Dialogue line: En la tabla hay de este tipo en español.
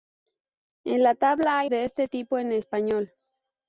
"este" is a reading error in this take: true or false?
false